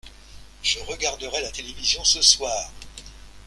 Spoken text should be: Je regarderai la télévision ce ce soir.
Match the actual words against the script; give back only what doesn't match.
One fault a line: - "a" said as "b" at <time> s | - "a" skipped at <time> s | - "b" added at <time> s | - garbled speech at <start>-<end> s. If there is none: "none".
- "ce" skipped at 2.2 s